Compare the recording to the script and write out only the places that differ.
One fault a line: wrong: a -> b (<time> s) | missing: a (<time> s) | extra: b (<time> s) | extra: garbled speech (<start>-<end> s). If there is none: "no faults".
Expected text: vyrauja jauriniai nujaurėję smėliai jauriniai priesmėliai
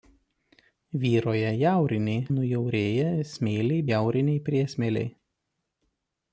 no faults